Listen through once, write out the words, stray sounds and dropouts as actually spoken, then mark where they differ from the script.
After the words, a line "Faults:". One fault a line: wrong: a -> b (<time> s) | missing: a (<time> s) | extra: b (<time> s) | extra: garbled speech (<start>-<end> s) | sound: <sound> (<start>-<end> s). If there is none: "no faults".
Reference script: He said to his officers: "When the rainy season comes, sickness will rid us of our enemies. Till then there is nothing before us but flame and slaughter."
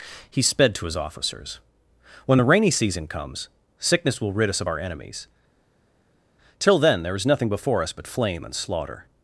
He sped to his officers: "When the rainy season comes, sickness will rid us of our enemies. Till then there is nothing before us but flame and slaughter."
Faults:
wrong: said -> sped (0.4 s)